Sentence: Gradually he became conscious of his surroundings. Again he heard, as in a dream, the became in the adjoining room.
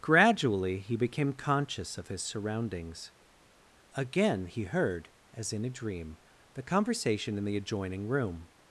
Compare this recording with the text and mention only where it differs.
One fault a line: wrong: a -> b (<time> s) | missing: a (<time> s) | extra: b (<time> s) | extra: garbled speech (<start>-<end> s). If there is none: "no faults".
wrong: became -> conversation (6.6 s)